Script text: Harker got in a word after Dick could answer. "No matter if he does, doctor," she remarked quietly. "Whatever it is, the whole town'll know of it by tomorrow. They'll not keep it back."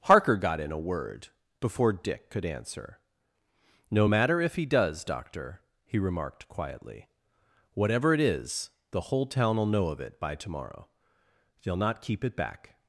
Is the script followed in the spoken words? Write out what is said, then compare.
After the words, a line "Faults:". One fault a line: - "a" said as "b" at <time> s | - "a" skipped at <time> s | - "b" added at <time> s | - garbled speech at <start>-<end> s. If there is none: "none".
Harker got in a word before Dick could answer. "No matter if he does, doctor," he remarked quietly. "Whatever it is, the whole town'll know of it by tomorrow. They'll not keep it back."
Faults:
- "after" said as "before" at 1.6 s
- "she" said as "he" at 5.8 s